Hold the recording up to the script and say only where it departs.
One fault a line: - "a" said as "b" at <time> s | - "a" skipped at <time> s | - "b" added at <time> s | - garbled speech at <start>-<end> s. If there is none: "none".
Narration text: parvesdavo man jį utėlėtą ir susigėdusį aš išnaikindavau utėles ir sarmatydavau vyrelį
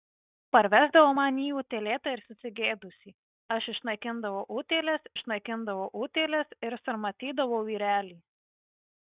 - "išnaikindavau utėles" added at 5.2 s